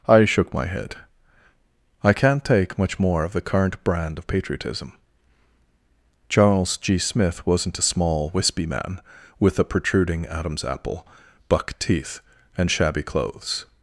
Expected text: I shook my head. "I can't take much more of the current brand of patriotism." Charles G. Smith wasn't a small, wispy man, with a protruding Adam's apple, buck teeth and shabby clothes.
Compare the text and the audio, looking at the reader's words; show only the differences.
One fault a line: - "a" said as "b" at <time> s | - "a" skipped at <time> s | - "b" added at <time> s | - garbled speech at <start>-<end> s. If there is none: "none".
none